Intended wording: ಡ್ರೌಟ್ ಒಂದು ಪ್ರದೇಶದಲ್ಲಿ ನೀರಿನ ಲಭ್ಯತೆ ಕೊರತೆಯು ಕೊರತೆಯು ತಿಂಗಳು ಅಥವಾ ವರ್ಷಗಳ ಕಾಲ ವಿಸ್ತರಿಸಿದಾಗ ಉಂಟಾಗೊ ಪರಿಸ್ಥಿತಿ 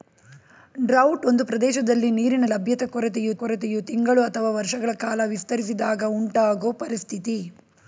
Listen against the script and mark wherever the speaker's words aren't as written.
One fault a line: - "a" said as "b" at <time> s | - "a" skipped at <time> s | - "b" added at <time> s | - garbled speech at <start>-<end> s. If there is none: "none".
none